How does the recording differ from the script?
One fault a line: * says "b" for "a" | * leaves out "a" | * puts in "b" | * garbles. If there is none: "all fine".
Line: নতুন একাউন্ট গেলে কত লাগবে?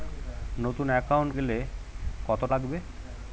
all fine